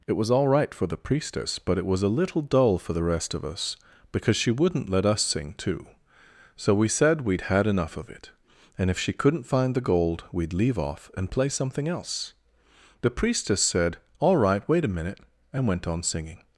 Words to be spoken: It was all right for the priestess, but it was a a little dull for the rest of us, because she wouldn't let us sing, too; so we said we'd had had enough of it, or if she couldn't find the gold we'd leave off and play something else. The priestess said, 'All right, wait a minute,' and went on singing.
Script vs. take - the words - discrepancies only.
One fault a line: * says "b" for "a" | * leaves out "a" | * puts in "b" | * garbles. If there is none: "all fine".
* leaves out "a"
* leaves out "had"
* says "and" for "or"